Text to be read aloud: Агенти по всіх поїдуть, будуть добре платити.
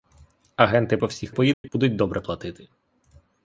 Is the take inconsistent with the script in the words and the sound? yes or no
yes